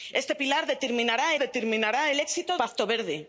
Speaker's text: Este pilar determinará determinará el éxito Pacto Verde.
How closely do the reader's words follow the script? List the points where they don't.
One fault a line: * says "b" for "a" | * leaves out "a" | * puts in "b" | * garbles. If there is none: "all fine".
all fine